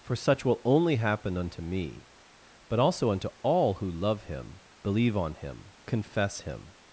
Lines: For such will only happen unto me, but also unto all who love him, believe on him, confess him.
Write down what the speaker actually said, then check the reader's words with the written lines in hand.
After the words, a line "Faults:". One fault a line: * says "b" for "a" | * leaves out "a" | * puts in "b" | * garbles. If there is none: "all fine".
For such will only happen unto me, but also unto all who love him, believe on him, confess him.
Faults:
all fine